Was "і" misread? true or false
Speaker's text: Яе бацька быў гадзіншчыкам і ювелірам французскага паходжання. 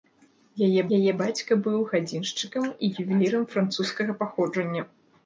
false